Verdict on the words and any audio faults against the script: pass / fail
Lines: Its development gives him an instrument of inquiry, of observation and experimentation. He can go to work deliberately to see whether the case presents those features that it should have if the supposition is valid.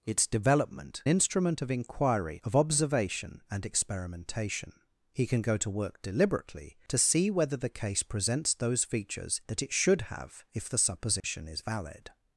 fail